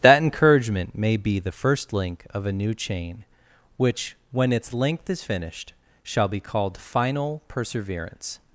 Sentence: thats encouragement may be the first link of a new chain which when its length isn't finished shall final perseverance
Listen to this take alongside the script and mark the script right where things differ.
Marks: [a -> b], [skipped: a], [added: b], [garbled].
[thats -> that] encouragement may be the first link of a new chain which when its length [isn't -> is] finished shall [added: be called] final perseverance